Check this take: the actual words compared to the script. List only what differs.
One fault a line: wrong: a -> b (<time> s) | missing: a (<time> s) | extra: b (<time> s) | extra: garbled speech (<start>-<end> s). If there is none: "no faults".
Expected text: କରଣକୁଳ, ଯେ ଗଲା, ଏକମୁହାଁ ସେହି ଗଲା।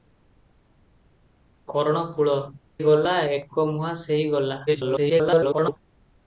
missing: ଯେ (2.3 s)
extra: garbled speech (4.7-5.8 s)